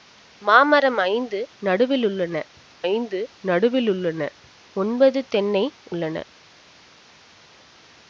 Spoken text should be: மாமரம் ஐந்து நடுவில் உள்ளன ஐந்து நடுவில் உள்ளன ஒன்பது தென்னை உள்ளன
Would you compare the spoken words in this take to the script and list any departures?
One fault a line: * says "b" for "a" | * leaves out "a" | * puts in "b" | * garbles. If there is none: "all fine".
all fine